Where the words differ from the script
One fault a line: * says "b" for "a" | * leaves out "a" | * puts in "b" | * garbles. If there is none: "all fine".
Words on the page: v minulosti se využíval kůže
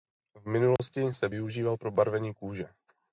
* puts in "pro barvení"